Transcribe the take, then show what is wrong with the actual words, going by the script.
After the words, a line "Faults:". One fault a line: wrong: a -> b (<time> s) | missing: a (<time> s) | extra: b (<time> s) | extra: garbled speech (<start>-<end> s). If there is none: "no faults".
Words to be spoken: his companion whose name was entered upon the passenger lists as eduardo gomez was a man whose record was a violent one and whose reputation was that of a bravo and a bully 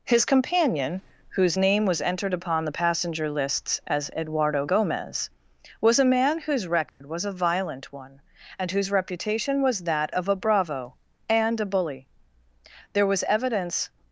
his companion whose name was entered upon the passenger lists as eduardo gomez was a man whose record was a violent one and whose reputation was that of a bravo and a bully there was evidence
Faults:
extra: there was evidence (12.9 s)